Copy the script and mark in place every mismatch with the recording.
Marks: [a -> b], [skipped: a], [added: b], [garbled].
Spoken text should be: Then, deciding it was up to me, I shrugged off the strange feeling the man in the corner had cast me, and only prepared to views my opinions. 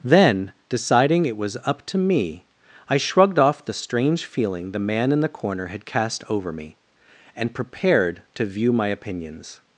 Then, deciding it was up to me, I shrugged off the strange feeling the man in the corner had cast [added: over] me, and [skipped: only] prepared to [views -> view] my opinions.